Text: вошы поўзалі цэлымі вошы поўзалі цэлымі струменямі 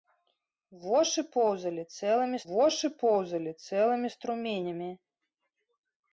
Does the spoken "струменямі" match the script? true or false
true